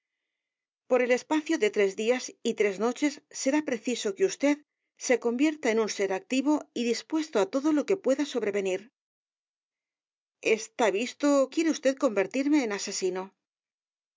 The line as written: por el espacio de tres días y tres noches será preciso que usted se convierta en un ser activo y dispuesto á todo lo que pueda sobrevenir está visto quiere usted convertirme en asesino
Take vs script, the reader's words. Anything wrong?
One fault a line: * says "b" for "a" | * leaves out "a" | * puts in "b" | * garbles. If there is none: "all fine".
all fine